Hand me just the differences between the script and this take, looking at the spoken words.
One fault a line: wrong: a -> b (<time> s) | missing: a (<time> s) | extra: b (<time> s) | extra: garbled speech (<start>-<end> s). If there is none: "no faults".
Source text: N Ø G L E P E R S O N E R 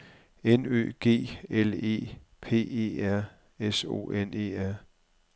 no faults